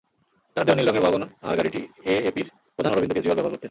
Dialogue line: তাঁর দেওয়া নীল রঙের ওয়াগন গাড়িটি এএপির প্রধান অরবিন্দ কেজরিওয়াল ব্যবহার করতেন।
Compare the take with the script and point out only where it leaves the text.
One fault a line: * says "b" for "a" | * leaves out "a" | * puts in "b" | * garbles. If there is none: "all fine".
* puts in "আর"